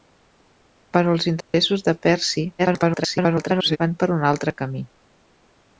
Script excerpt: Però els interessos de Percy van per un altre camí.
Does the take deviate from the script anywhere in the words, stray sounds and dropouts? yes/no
yes